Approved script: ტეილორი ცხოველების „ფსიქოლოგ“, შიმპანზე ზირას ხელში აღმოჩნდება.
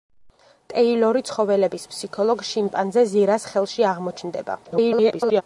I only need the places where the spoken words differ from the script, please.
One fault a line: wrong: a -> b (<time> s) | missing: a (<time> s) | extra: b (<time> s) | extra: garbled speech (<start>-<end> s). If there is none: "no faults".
extra: garbled speech (4.6-5.4 s)